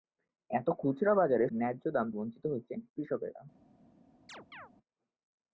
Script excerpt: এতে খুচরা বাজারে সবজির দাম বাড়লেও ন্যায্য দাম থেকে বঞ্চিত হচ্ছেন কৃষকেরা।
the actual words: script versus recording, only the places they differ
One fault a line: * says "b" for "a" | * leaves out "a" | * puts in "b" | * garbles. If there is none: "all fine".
* leaves out "সবজির দাম বাড়লেও"
* leaves out "থেকে"